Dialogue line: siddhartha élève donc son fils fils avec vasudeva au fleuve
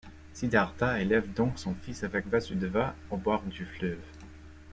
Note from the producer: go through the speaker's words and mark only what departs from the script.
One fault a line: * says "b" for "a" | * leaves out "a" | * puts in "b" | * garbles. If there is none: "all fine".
* leaves out "fils"
* puts in "bord du"